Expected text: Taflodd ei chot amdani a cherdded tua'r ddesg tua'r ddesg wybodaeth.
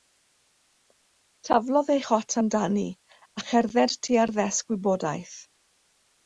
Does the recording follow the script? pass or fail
fail